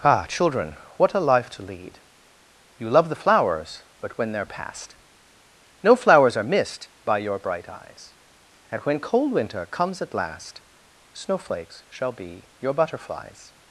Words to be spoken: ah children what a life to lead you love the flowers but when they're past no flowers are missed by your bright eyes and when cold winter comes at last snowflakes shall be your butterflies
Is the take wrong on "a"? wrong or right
right